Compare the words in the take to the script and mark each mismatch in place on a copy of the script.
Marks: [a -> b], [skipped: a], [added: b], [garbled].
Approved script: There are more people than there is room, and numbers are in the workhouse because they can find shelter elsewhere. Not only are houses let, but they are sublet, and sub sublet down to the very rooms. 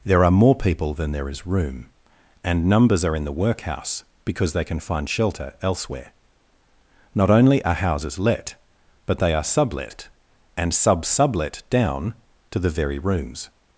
There are more people than there is room, and numbers are in the workhouse because they can find shelter elsewhere. Not only are houses let, but they are sublet, and sub sublet down to the very rooms.